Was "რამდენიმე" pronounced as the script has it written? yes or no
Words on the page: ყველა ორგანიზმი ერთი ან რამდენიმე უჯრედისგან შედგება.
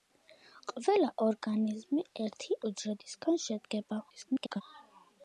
no